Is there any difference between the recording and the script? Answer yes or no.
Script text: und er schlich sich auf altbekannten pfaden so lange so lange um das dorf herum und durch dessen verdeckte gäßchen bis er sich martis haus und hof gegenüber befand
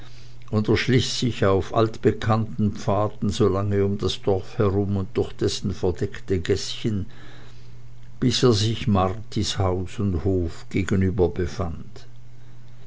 yes